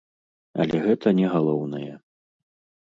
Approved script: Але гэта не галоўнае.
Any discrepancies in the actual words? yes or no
no